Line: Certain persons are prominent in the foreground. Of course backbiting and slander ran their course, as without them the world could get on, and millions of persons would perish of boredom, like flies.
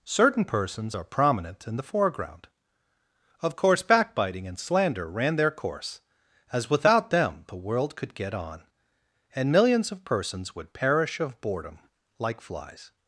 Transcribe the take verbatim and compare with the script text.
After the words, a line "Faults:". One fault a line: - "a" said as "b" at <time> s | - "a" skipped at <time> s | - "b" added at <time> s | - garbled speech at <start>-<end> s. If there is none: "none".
Certain persons are prominent in the foreground. Of course backbiting and slander ran their course, as without them the world could get on, and millions of persons would perish of boredom, like flies.
Faults:
none